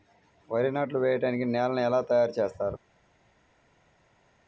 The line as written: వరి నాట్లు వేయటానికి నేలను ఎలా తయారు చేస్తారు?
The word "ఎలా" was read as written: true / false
true